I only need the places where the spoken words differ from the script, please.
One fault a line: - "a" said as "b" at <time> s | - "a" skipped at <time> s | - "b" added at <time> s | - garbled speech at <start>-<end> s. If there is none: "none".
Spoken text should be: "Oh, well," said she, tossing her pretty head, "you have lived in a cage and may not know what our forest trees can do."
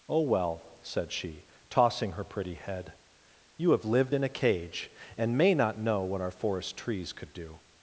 - "can" said as "could" at 7.1 s